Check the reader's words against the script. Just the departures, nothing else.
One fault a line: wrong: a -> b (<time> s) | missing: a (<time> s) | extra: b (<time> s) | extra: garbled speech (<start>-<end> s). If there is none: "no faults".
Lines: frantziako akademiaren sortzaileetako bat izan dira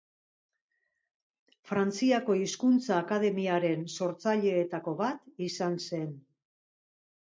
extra: hizkuntza (2.4 s)
wrong: dira -> zen (5.9 s)